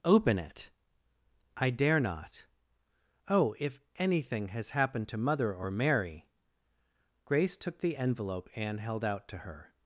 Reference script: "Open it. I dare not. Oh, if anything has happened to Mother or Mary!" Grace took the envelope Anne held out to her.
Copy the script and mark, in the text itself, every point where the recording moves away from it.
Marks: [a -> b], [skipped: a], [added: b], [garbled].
"Open it. I dare not. Oh, if anything has happened to Mother or Mary!" Grace took the envelope Anne held out to her.